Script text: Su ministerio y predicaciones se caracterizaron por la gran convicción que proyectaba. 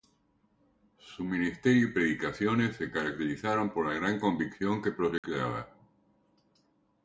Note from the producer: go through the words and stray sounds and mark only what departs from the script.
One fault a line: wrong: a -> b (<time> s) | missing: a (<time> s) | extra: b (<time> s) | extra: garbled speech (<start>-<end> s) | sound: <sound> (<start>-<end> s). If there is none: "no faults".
sound: dropout (5.2-5.2 s)